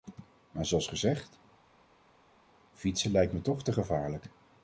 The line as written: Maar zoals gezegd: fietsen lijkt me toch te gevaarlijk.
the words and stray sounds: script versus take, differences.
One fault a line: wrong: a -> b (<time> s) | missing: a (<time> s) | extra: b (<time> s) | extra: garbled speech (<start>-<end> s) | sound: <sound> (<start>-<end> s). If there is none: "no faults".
no faults